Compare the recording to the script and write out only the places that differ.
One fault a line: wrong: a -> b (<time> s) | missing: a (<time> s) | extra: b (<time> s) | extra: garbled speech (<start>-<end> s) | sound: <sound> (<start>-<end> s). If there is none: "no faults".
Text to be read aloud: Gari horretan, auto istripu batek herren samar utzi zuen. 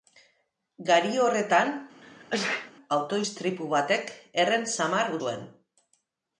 sound: sneeze (2.0-2.7 s)
missing: utzi (5.1 s)